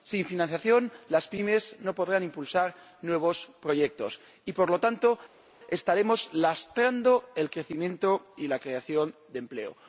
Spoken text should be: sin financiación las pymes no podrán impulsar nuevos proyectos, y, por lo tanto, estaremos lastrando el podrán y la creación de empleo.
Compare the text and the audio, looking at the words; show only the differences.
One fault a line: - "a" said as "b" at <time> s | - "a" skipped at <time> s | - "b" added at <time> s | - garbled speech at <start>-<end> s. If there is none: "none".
- "podrán" said as "crecimiento" at 7.5 s